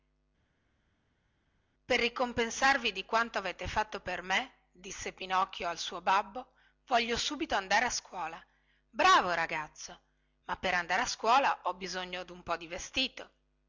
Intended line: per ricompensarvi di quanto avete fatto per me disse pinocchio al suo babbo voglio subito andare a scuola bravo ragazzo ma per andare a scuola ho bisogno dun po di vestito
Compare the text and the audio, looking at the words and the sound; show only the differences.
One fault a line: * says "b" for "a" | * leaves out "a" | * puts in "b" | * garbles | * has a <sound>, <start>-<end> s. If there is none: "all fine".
all fine